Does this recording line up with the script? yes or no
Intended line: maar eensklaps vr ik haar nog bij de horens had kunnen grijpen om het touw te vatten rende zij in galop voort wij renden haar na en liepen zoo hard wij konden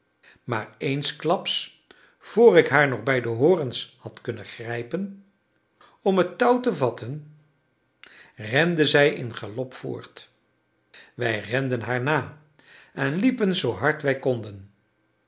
yes